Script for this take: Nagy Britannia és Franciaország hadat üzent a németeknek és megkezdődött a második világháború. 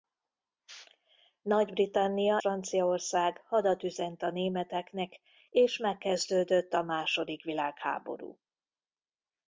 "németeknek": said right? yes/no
yes